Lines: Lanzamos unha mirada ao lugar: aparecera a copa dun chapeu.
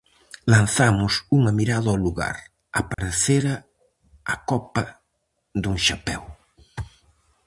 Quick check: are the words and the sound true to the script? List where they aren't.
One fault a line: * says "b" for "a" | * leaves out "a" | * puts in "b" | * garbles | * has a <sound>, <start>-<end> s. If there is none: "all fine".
* has a dropout, 2.9-3.0 s